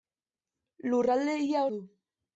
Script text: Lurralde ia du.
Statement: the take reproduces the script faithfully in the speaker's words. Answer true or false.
true